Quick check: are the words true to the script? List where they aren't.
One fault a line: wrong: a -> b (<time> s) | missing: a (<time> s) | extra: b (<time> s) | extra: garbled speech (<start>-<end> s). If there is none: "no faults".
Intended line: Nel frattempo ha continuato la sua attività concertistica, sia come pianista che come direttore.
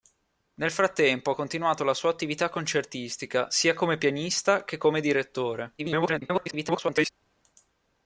extra: garbled speech (5.8-7.1 s)